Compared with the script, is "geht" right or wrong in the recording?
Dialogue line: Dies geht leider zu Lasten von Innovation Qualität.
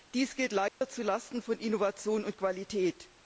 right